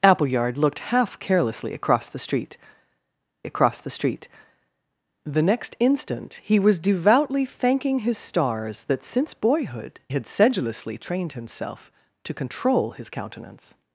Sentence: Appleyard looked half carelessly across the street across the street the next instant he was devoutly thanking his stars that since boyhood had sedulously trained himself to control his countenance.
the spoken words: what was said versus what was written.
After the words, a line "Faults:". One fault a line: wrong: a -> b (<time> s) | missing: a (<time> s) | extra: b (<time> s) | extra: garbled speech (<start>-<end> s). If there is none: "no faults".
Appleyard looked half carelessly across the street across the street the next instant he was devoutly thanking his stars that since boyhood had sedulously trained himself to control his countenance.
Faults:
no faults